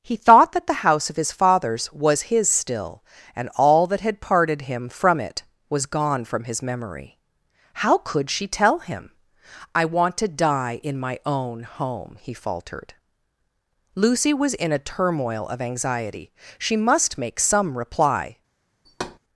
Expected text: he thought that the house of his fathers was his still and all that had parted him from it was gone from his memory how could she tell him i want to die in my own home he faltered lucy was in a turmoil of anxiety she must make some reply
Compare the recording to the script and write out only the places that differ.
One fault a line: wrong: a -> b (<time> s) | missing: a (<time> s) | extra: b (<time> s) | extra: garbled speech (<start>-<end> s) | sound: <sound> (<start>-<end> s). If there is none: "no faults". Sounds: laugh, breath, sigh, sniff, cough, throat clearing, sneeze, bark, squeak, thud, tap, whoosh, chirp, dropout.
sound: thud (18.8-19.2 s)